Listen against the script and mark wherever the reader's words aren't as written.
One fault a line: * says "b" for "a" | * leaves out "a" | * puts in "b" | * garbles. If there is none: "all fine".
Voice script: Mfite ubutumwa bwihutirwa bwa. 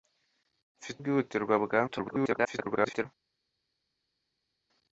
* leaves out "ubutumwa"
* garbles